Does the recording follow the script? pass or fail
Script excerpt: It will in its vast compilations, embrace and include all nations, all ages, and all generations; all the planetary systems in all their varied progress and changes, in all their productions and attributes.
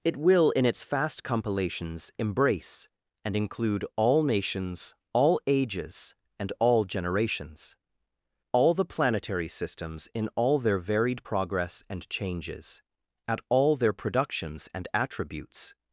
fail